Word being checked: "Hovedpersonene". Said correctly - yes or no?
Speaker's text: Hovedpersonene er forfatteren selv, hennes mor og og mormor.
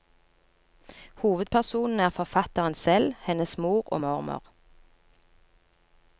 yes